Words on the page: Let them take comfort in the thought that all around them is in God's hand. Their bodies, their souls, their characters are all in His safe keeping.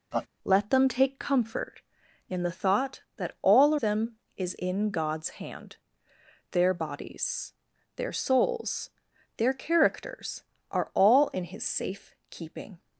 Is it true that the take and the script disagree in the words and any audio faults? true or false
true